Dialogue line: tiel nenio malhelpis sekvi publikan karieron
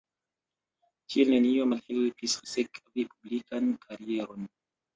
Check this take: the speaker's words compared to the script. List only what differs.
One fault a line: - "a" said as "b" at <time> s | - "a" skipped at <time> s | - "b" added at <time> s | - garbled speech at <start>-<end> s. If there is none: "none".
none